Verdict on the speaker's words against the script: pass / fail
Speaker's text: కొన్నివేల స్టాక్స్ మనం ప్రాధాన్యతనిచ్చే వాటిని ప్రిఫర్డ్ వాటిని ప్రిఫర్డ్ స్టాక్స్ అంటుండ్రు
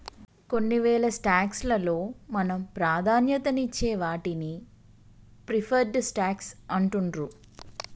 fail